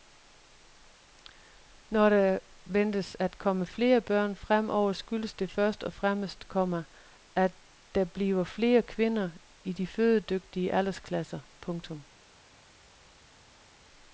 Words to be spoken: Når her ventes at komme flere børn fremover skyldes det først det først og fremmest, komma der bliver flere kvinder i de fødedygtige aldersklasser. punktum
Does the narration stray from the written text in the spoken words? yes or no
yes